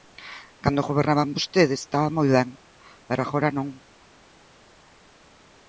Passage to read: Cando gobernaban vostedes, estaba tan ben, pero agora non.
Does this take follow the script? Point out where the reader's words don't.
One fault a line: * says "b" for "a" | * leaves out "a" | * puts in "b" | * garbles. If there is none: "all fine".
* says "moi" for "tan"